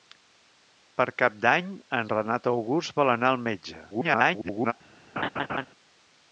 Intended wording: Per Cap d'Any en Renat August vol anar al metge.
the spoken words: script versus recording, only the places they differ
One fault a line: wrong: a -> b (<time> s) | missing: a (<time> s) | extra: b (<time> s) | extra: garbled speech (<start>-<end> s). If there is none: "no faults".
extra: garbled speech (3.9-4.7 s)